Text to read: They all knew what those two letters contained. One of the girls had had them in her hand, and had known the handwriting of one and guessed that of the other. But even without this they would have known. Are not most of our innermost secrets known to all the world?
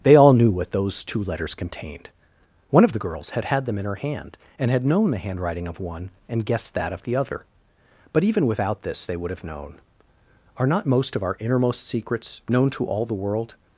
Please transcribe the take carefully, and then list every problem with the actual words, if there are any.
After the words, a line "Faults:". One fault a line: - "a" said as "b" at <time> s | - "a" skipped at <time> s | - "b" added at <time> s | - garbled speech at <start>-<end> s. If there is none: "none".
They all knew what those two letters contained. One of the girls had had them in her hand, and had known the handwriting of one and guessed that of the other. But even without this they would have known. Are not most of our innermost secrets known to all the world?
Faults:
none